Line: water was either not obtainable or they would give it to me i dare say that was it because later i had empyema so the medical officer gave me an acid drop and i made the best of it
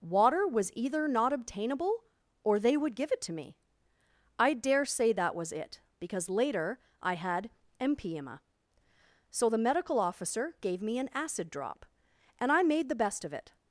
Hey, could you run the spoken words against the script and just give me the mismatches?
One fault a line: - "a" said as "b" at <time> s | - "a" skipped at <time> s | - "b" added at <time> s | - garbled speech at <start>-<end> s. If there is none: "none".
none